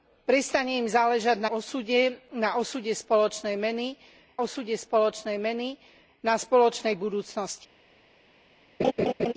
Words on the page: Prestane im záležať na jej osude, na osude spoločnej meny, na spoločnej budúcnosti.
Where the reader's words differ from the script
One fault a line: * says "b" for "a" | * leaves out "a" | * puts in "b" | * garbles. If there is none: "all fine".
* says "osude na" for "jej"
* says "spoločnej meny" for "na"